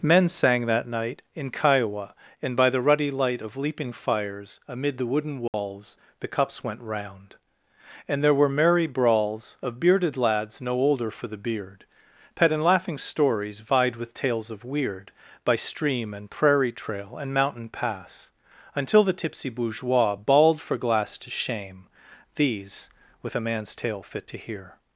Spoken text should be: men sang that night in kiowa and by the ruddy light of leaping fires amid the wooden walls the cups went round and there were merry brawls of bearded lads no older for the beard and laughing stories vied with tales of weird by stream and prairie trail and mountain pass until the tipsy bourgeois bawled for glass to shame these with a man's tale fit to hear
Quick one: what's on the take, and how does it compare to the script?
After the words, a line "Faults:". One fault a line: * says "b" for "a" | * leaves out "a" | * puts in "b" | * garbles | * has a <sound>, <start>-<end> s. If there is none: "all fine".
men sang that night in kiowa and by the ruddy light of leaping fires amid the wooden walls the cups went round and there were merry brawls of bearded lads no older for the beard pet and laughing stories vied with tales of weird by stream and prairie trail and mountain pass until the tipsy bourgeois bawled for glass to shame these with a man's tale fit to hear
Faults:
* has a dropout, 5.5-5.5 s
* puts in "pet"